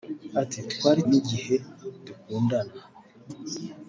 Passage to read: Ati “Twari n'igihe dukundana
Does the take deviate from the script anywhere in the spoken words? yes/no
no